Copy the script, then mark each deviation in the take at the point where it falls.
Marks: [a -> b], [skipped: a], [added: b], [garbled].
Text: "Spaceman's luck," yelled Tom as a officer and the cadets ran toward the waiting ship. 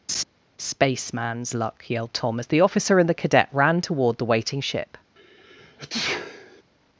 "Spaceman's luck," yelled Tom as [a -> the] officer and the [cadets -> cadet] ran toward the waiting ship.